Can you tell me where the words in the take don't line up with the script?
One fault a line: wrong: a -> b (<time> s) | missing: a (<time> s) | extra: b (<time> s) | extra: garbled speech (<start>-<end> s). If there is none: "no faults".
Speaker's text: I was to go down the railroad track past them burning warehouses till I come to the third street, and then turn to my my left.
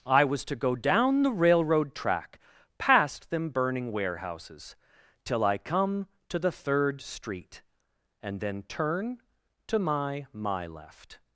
no faults